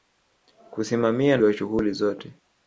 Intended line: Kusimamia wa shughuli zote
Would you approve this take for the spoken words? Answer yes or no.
yes